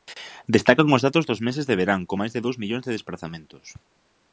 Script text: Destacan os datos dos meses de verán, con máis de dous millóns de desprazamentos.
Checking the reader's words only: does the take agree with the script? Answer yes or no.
yes